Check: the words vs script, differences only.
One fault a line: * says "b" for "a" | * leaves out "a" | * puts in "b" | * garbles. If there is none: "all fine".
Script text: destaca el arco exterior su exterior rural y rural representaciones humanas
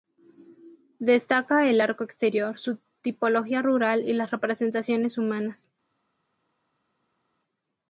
* says "tipología" for "exterior"
* says "las" for "rural"